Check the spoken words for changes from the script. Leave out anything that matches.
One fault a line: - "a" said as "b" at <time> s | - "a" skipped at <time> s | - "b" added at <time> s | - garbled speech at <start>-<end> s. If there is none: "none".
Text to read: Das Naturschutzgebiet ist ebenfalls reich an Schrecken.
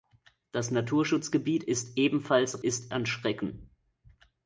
- "reich" said as "ist" at 2.6 s